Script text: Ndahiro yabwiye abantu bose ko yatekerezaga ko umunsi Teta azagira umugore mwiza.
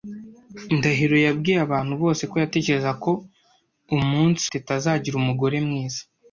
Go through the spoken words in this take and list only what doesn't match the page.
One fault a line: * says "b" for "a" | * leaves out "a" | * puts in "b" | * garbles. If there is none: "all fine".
all fine